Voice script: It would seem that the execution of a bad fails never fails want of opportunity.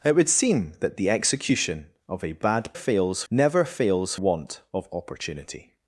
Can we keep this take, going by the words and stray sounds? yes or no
yes